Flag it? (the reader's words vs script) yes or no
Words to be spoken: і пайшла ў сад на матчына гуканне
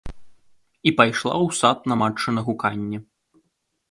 no